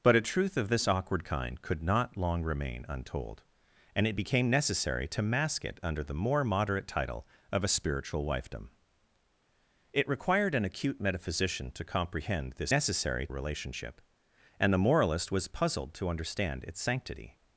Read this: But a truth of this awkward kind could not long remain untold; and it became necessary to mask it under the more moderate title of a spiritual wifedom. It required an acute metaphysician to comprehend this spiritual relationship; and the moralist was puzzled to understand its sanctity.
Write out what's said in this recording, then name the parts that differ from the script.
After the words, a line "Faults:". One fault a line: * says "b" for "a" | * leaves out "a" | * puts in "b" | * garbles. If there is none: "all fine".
But a truth of this awkward kind could not long remain untold; and it became necessary to mask it under the more moderate title of a spiritual wifedom. It required an acute metaphysician to comprehend this necessary relationship; and the moralist was puzzled to understand its sanctity.
Faults:
* says "necessary" for "spiritual"